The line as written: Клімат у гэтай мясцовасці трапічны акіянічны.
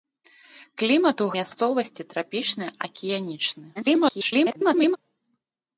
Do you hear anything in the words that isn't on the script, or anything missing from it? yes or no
yes